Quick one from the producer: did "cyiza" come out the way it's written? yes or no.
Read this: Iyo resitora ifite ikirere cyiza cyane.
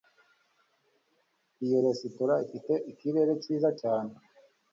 yes